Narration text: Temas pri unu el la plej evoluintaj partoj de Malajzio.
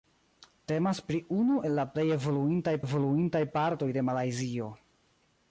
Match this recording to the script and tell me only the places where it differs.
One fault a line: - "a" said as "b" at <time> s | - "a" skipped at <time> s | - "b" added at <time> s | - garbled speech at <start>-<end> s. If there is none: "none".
- "evoluintaj" added at 2.9 s